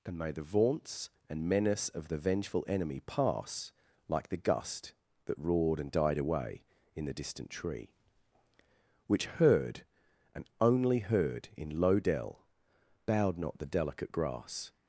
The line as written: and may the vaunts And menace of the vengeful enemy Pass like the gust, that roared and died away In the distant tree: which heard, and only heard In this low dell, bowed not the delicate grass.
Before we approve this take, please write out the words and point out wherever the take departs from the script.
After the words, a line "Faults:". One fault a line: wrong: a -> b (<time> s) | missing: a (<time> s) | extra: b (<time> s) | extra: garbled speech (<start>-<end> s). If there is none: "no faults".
and may the vaunts And menace of the vengeful enemy Pass like the gust, that roared and died away In the distant tree: which heard, and only heard In low dell, bowed not the delicate grass.
Faults:
missing: this (11.8 s)